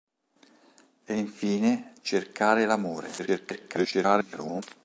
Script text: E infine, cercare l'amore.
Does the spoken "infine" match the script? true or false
true